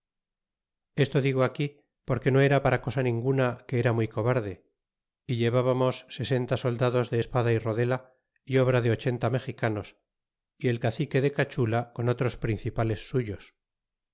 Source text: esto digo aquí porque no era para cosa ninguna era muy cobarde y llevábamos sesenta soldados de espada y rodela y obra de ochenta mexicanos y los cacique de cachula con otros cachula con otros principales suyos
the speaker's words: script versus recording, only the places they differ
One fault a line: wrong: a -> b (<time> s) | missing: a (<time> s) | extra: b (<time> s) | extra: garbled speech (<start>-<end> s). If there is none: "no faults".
extra: que (3.7 s)
wrong: los -> el (10.7 s)
missing: cachula con otros (12.4 s)